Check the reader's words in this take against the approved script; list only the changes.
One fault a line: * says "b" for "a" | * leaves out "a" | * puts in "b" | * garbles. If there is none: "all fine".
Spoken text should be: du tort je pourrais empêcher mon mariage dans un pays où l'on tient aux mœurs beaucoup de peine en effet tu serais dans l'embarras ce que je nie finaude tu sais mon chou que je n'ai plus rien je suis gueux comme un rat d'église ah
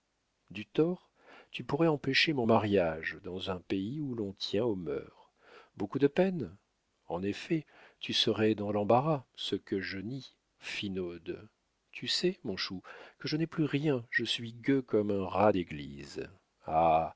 * says "tu" for "je"